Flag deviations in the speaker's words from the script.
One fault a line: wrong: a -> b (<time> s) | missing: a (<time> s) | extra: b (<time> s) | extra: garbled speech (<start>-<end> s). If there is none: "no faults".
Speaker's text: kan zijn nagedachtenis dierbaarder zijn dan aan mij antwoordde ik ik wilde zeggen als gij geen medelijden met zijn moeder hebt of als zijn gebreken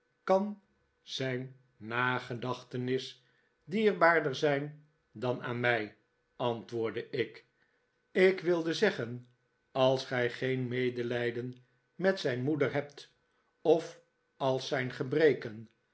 no faults